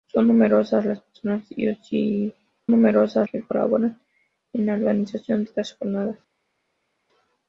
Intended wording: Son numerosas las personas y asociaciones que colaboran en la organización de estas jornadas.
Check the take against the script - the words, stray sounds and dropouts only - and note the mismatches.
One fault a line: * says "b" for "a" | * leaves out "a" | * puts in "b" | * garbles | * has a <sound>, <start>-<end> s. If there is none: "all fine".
* says "numerosas" for "asociaciones"
* leaves out "de"